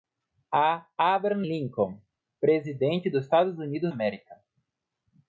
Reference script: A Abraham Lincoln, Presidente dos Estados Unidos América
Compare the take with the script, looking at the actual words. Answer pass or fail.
pass